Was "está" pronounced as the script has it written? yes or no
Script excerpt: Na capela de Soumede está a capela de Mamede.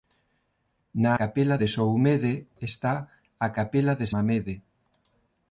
yes